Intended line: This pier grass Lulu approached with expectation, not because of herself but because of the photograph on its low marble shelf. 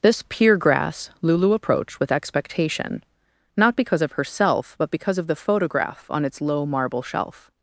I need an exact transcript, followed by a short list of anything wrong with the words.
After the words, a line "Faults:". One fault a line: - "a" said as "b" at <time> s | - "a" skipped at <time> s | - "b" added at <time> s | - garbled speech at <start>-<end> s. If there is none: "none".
This pier grass Lulu approached with expectation, not because of herself but because of the photograph on its low marble shelf.
Faults:
none